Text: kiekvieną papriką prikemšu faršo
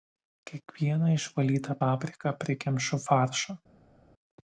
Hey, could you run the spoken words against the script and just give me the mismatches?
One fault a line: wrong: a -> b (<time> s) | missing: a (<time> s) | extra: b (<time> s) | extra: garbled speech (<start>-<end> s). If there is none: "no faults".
extra: išvalytą (1.2 s)